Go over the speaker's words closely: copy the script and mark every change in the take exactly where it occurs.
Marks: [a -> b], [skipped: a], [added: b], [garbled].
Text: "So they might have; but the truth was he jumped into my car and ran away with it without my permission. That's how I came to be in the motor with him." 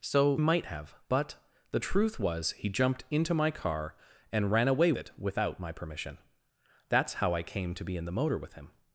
"So [skipped: they] might have; but the truth was he jumped into my car and ran away [skipped: with] it without my permission. That's how I came to be in the motor with him."